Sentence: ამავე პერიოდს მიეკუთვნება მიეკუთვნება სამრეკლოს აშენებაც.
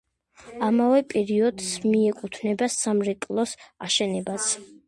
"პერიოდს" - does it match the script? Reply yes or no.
yes